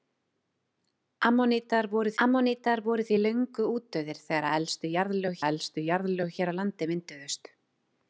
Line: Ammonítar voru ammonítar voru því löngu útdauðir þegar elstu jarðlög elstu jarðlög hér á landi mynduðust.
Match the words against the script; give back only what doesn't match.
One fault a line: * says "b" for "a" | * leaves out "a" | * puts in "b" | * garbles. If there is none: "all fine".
all fine